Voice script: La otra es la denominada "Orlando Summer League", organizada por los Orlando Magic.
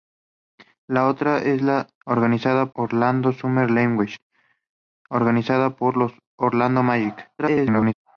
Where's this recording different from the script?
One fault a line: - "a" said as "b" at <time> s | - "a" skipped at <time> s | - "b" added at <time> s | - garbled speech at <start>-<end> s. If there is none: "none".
- "denominada" said as "organizada" at 2.1 s
- garbled speech at 7.4-7.9 s